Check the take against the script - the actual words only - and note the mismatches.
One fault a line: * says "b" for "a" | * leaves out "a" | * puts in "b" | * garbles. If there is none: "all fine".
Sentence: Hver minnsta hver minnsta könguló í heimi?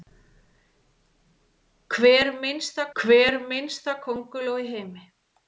all fine